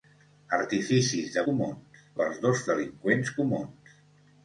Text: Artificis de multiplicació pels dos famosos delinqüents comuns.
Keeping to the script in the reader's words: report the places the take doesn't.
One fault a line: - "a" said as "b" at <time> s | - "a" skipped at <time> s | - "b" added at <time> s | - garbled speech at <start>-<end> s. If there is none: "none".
- "multiplicació" said as "comuns" at 1.5 s
- "famosos" skipped at 2.6 s